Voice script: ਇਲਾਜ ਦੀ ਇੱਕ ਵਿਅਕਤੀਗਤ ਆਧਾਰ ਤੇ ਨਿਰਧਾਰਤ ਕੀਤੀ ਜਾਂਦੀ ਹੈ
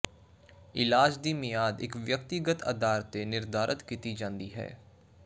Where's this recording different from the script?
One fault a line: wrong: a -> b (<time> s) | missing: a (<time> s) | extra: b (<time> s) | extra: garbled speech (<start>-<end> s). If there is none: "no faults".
extra: ਮਿਆਦ (1.3 s)